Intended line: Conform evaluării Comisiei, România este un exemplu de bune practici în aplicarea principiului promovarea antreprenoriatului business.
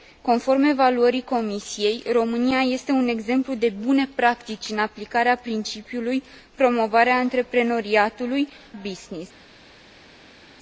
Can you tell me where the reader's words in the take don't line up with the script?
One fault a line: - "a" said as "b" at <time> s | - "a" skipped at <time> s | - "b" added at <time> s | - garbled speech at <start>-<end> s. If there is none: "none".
none